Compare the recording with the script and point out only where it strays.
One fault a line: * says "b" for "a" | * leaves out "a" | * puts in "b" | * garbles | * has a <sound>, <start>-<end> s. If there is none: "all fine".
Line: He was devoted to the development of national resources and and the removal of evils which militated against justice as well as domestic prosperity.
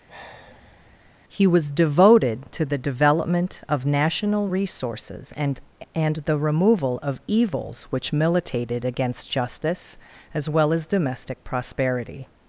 * has a sigh, 0.1-1.1 s